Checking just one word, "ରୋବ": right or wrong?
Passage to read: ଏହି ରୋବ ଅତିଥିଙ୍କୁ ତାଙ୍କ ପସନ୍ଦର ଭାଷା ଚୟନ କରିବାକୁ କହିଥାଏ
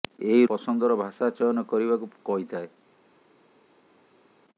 wrong